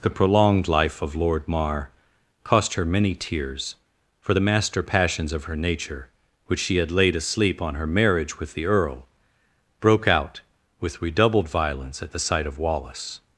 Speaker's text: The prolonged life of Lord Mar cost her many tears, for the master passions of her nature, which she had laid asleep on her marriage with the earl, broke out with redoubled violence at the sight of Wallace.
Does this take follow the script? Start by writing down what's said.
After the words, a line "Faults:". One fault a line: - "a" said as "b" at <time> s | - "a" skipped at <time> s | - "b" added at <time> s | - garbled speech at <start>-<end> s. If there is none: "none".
The prolonged life of Lord Mar cost her many tears, for the master passions of her nature, which she had laid asleep on her marriage with the earl, broke out with redoubled violence at the sight of Wallace.
Faults:
none